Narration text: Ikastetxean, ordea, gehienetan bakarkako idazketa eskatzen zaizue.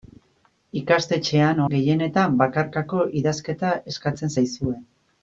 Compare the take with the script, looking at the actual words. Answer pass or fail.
fail